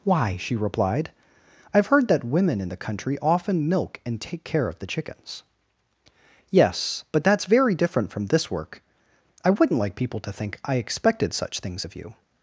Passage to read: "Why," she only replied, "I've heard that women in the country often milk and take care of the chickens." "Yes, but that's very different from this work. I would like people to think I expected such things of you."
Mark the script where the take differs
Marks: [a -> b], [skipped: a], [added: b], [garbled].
"Why," she [skipped: only] replied, "I've heard that women in the country often milk and take care of the chickens." "Yes, but that's very different from this work. I [would -> wouldn't] like people to think I expected such things of you."